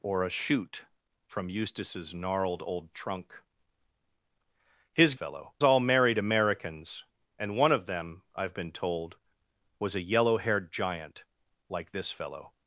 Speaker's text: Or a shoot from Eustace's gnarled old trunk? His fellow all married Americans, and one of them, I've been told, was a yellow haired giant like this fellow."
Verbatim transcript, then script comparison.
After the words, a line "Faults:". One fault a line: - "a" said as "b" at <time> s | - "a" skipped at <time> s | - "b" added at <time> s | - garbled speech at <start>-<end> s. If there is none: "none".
Or a shoot from Eustace's gnarled old trunk? His fellow all married Americans, and one of them, I've been told, was a yellow haired giant like this fellow."
Faults:
none